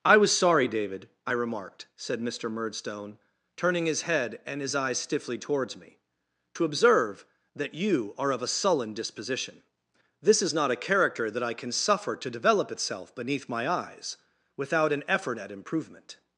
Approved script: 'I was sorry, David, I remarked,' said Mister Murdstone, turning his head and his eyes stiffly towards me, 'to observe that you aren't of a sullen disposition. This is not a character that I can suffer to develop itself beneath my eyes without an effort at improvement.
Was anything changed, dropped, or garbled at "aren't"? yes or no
yes